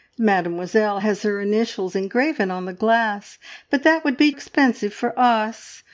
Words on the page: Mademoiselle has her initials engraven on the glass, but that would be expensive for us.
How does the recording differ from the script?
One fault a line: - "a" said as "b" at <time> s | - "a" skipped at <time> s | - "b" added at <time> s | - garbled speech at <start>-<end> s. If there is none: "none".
none